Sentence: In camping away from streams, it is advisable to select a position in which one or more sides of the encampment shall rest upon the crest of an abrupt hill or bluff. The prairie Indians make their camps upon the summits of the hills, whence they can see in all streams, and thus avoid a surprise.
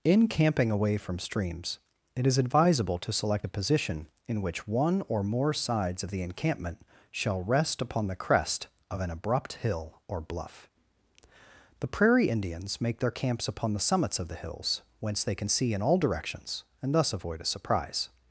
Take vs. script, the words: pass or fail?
fail